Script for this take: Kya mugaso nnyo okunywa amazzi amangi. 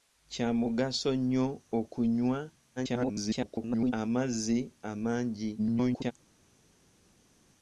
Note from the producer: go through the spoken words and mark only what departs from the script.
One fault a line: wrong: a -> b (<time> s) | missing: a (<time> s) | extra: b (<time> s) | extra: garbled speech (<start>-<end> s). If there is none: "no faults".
extra: garbled speech (2.8-3.9 s)
extra: garbled speech (5.6-6.1 s)